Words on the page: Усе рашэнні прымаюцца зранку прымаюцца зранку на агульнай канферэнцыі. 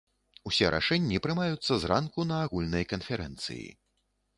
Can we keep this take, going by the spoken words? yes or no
no